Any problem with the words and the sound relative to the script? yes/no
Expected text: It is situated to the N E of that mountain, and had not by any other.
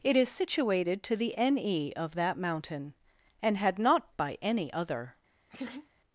yes